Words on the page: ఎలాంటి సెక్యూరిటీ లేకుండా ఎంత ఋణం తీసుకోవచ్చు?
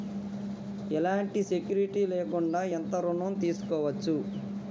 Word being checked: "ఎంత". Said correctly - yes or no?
yes